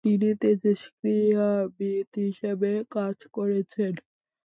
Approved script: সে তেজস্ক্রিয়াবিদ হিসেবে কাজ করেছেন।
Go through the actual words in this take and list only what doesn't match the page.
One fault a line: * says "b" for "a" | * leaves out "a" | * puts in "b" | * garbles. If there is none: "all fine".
* says "তিনি" for "সে"